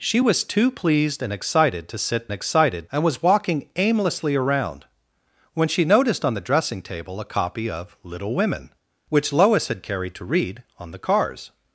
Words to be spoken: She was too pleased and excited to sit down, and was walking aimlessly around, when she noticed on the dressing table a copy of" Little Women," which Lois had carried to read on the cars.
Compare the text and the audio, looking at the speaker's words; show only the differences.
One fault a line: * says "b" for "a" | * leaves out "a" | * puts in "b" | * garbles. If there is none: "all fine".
* says "excited" for "down"